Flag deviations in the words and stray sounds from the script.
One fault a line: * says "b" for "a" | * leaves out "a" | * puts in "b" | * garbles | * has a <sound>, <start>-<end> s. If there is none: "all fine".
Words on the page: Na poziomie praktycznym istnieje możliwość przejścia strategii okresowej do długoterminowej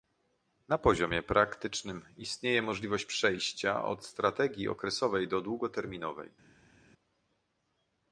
* puts in "od"